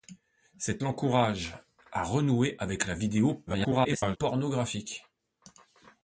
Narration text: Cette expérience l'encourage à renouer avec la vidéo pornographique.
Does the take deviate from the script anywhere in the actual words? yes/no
yes